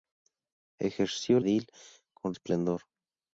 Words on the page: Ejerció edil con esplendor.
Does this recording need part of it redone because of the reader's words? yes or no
no